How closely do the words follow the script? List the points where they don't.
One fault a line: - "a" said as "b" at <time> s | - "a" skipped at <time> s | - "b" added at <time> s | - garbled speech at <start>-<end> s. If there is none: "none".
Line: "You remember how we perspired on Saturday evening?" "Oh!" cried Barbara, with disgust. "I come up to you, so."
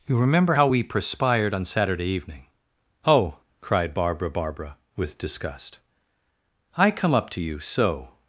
- "Barbara" added at 4.3 s